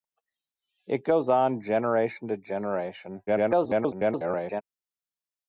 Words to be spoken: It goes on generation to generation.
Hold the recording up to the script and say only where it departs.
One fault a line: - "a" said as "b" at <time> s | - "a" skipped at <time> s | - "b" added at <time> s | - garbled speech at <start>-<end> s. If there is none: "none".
- garbled speech at 3.3-4.6 s